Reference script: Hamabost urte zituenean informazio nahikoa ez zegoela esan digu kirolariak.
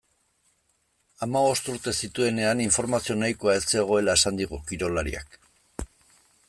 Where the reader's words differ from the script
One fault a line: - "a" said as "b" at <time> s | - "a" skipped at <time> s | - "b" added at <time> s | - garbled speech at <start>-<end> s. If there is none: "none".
none